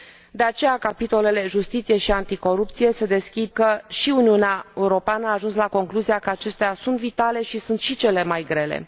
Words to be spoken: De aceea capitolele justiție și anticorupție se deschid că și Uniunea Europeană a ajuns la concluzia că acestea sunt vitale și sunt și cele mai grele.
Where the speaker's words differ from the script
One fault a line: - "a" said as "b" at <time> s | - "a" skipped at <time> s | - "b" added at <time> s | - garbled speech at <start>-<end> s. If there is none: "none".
none